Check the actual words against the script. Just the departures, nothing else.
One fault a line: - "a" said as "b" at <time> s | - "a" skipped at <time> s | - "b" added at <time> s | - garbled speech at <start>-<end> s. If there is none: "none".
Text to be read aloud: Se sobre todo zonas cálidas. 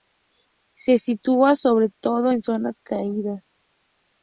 - "sitúa" added at 1.0 s
- "en" added at 2.3 s